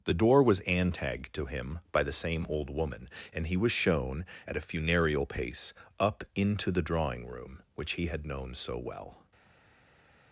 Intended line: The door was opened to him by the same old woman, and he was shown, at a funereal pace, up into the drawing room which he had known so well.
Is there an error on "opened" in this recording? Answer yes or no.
yes